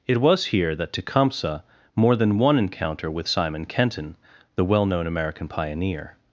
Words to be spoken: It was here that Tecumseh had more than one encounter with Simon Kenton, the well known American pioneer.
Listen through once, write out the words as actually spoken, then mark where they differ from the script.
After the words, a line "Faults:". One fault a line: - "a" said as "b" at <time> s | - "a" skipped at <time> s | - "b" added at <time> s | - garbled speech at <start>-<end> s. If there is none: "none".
It was here that Tecumseh more than one encounter with Simon Kenton, the well known American pioneer.
Faults:
- "had" skipped at 1.6 s